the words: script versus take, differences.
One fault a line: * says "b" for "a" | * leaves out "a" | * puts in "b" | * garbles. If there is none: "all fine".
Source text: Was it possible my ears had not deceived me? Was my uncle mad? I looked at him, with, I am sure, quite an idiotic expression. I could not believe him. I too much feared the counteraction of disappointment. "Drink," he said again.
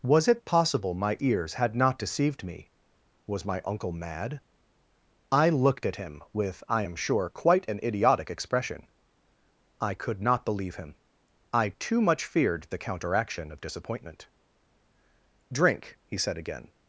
all fine